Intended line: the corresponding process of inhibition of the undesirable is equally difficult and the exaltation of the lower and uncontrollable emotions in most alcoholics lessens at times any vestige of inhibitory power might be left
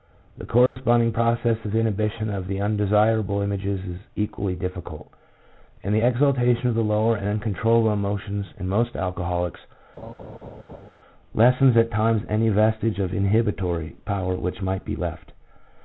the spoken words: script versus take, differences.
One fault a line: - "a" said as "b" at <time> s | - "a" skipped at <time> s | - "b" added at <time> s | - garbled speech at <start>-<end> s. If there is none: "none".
- "images" added at 3.4 s
- "which" added at 14.4 s